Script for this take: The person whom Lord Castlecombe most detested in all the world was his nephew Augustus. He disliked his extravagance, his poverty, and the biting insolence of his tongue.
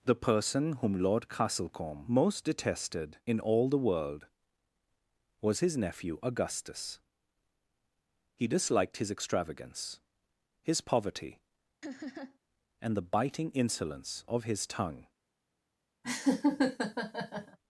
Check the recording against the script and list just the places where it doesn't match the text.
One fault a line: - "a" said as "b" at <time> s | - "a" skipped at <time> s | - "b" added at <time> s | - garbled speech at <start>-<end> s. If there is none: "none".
none